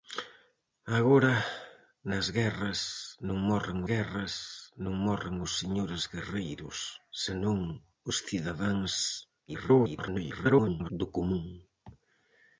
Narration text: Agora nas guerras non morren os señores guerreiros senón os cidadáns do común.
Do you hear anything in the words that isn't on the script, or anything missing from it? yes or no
yes